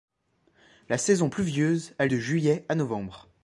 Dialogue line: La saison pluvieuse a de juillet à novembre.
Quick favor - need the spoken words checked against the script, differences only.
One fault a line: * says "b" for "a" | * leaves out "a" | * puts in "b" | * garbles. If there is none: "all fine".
all fine